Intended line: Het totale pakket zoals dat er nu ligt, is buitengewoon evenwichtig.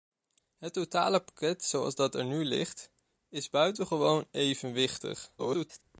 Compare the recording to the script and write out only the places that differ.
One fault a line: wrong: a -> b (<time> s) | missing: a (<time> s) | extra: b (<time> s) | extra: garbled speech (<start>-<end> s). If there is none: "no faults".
extra: garbled speech (5.4-5.8 s)